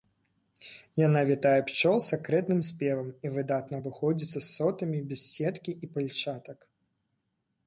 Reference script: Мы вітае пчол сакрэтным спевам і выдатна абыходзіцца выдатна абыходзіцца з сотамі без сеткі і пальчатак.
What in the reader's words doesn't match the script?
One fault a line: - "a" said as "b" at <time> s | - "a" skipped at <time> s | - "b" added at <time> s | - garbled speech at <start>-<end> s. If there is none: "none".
- "Мы" said as "Яна" at 1.1 s
- "выдатна абыходзіцца" skipped at 4.4 s